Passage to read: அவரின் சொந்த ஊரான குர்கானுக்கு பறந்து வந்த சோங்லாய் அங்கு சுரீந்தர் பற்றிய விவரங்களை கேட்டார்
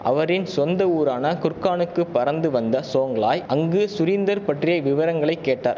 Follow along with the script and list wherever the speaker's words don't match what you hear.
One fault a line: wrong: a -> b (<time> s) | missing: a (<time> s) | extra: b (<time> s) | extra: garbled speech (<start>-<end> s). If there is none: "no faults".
no faults